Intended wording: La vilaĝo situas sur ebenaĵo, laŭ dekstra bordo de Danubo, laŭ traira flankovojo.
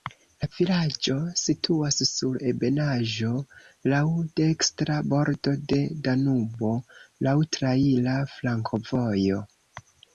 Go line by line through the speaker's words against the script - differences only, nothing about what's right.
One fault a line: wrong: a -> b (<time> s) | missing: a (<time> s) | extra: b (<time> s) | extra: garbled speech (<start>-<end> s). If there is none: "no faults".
no faults